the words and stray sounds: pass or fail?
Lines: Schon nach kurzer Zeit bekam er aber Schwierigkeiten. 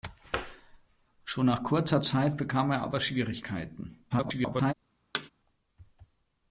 fail